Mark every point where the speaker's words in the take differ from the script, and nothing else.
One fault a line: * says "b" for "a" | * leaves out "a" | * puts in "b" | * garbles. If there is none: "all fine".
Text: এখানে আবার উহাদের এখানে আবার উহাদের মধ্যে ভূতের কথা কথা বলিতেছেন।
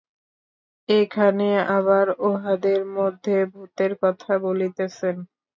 * leaves out "এখানে আবার উহাদের"
* leaves out "কথা"